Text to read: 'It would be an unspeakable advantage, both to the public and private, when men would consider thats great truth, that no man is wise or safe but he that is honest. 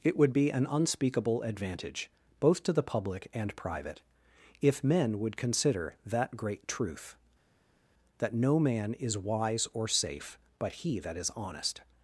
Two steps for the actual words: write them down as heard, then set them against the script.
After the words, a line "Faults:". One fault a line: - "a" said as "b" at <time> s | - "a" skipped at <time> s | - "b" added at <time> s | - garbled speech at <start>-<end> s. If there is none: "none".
'It would be an unspeakable advantage, both to the public and private, if men would consider that great truth, that no man is wise or safe but he that is honest.
Faults:
- "when" said as "if" at 4.6 s
- "thats" said as "that" at 6.0 s